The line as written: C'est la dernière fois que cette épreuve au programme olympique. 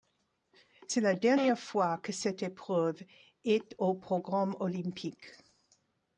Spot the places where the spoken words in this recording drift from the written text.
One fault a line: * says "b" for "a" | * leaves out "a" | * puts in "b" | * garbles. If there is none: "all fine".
* puts in "est"